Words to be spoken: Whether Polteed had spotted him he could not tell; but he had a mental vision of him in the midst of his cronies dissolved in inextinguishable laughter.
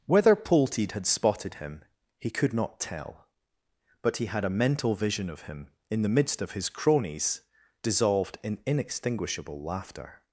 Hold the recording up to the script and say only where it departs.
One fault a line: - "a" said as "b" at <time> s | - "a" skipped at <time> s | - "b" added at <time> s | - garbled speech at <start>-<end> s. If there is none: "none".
none